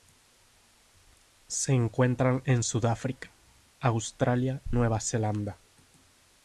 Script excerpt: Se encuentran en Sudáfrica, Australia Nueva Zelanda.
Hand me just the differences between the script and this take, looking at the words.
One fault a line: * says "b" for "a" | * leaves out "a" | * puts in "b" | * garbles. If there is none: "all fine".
all fine